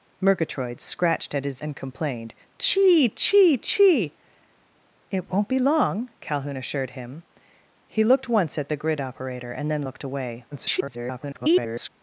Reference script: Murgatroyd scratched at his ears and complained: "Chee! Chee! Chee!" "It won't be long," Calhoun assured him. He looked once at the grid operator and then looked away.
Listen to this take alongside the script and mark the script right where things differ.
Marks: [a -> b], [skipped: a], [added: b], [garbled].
Murgatroyd scratched at his [skipped: ears] and complained: "Chee! Chee! Chee!" "It won't be long," Calhoun assured him. He looked once at the grid operator and then looked away. [garbled]